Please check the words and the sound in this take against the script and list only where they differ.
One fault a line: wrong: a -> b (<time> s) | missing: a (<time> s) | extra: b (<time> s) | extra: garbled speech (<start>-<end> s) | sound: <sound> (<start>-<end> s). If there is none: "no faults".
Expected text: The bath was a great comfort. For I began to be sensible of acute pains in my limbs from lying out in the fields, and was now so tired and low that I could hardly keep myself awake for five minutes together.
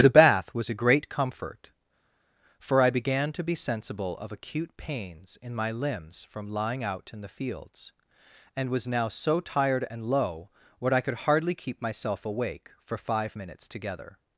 wrong: that -> what (10.8 s)